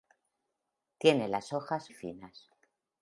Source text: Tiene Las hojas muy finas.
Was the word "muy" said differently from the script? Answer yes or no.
yes